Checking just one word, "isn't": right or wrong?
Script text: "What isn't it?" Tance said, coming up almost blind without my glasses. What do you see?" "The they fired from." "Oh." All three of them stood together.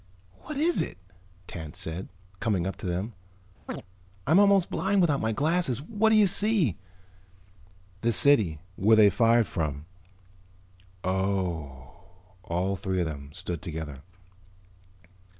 wrong